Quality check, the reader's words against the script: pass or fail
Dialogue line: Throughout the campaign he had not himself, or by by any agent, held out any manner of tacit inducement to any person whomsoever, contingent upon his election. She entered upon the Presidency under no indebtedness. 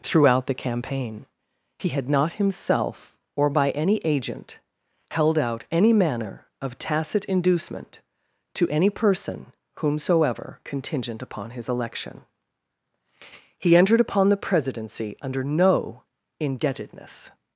fail